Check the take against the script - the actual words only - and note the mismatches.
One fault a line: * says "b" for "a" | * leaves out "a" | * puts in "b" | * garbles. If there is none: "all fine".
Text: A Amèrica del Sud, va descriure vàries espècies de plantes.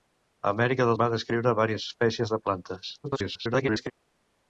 * leaves out "Sud"
* garbles